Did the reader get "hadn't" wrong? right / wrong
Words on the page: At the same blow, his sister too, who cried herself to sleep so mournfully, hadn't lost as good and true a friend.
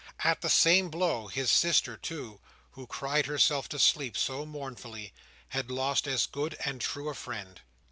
wrong